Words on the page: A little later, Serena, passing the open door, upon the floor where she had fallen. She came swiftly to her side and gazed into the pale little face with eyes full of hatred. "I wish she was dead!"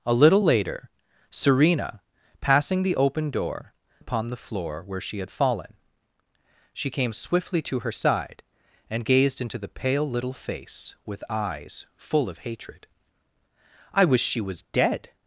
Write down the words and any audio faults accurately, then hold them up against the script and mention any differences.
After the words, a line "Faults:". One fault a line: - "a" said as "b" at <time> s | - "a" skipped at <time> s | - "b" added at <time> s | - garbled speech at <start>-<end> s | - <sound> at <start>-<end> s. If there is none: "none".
A little later, Serena, passing the open door, upon the floor where she had fallen. She came swiftly to her side and gazed into the pale little face with eyes full of hatred. "I wish she was dead!"
Faults:
none